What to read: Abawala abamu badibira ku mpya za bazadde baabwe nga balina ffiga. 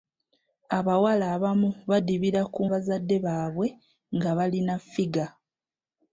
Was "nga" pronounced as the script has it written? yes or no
yes